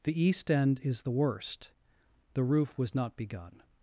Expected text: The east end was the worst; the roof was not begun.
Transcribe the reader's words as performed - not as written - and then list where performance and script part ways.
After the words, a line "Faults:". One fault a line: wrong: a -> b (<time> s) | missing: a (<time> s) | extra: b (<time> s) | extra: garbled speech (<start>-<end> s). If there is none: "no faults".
The east end is the worst; the roof was not begun.
Faults:
wrong: was -> is (0.8 s)